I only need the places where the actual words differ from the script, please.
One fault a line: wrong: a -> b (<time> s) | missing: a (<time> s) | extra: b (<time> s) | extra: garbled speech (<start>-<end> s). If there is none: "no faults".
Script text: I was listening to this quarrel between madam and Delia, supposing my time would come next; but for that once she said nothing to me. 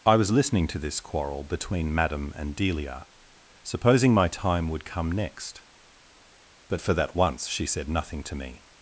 no faults